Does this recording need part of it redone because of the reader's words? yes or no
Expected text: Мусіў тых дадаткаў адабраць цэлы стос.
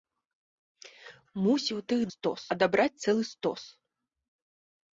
yes